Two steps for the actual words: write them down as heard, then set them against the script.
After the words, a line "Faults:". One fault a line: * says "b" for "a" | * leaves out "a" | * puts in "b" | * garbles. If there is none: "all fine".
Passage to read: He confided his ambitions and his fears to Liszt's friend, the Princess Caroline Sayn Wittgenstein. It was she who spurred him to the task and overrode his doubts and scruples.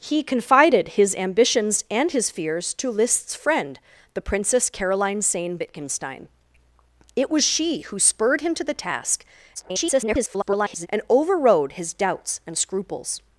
He confided his ambitions and his fears to Liszt's friend, the Princess Caroline Sayn Wittgenstein. It was she who spurred him to the task [garbled] and overrode his doubts and scruples.
Faults:
* garbles